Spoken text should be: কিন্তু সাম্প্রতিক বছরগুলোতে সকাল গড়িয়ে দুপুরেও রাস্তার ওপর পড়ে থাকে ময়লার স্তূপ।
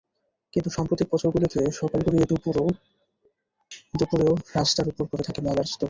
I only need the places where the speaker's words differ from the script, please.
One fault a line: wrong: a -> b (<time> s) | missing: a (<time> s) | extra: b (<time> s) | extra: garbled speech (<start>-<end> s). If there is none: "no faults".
no faults